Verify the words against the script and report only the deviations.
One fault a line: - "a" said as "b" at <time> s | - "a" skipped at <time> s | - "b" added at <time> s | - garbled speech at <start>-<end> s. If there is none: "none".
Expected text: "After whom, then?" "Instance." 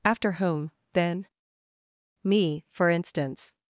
- "Me for" added at 2.2 s